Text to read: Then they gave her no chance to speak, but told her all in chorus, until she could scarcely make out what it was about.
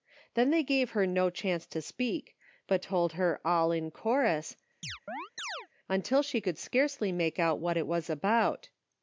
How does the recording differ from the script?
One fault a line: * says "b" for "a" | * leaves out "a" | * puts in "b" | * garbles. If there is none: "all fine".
all fine